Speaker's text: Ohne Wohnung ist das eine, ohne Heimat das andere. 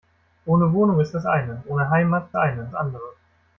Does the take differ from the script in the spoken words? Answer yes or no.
yes